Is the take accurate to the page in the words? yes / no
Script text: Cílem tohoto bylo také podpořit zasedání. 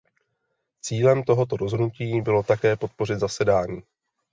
no